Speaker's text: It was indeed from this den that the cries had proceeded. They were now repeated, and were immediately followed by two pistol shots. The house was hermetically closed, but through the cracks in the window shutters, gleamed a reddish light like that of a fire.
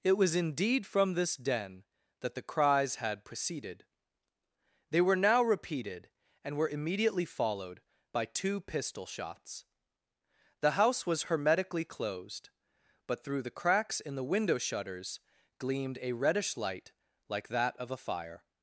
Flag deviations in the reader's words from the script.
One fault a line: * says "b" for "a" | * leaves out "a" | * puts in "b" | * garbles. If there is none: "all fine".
all fine